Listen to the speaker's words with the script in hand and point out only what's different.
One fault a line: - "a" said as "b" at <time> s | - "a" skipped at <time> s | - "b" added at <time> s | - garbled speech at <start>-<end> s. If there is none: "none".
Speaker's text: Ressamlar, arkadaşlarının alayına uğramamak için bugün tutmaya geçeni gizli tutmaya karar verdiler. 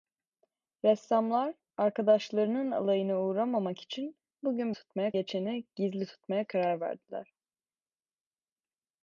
none